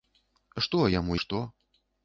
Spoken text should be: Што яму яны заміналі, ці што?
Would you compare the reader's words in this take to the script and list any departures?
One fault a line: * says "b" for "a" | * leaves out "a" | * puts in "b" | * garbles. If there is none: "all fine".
* leaves out "яны заміналі ці"